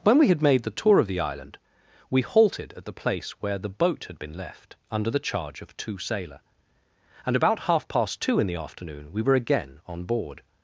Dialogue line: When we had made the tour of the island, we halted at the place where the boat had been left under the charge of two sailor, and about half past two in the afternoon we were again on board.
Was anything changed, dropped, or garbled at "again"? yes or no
no